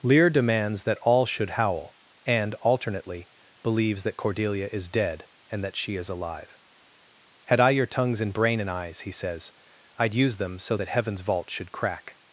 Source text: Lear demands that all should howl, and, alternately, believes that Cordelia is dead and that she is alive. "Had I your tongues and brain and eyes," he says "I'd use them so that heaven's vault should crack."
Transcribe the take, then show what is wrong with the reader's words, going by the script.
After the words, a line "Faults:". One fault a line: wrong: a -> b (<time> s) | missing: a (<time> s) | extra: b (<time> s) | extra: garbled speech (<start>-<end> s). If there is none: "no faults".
Lear demands that all should howl, and, alternately, believes that Cordelia is dead and that she is alive. "Had I your tongues and brain and eyes," he says "I'd use them so that heaven's vault should crack."
Faults:
no faults